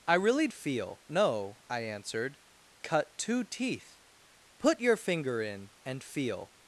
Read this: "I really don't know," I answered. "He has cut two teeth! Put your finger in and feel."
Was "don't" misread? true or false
true